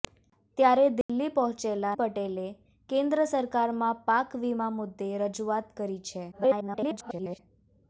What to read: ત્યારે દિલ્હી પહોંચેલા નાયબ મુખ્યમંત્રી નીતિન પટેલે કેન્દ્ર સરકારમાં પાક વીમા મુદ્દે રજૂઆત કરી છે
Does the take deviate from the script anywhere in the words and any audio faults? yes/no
yes